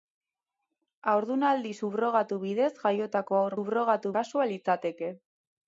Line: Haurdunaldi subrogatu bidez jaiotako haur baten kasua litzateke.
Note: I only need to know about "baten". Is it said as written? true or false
false